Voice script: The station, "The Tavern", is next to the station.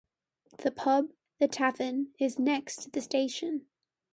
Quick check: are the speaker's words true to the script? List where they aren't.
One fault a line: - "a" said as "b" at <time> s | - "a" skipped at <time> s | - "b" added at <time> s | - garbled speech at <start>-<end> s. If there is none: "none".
- "station" said as "pub" at 0.7 s